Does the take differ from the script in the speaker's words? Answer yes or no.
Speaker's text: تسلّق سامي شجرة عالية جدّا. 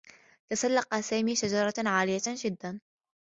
no